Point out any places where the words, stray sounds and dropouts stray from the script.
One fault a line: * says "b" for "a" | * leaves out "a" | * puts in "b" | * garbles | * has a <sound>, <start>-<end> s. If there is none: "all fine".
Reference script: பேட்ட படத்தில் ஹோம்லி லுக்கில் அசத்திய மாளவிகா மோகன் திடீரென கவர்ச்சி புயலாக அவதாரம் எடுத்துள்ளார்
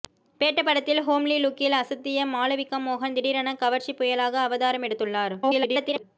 * garbles